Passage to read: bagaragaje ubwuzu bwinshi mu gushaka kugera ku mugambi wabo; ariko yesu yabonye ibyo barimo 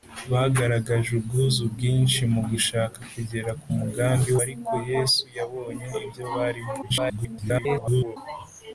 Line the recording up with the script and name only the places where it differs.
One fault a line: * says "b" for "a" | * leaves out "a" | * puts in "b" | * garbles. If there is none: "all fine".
* leaves out "wabo"
* garbles